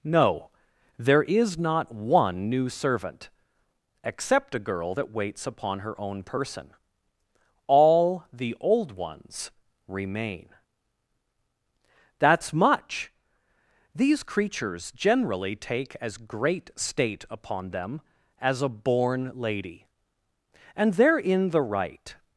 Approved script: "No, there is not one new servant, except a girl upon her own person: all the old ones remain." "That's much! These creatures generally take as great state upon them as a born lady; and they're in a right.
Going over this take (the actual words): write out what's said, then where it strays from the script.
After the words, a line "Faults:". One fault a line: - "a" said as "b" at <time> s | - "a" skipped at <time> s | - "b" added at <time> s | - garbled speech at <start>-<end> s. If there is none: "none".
"No, there is not one new servant, except a girl that waits upon her own person: all the old ones remain." "That's much! These creatures generally take as great state upon them as a born lady; and they're in the right.
Faults:
- "that waits" added at 4.9 s
- "a" said as "the" at 21.5 s